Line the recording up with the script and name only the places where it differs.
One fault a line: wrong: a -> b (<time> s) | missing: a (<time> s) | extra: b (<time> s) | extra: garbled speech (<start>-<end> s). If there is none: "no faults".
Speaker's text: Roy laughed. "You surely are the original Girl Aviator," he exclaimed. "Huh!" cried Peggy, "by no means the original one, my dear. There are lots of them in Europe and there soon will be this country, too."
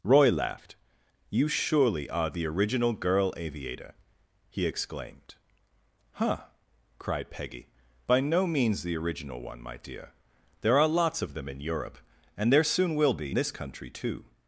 no faults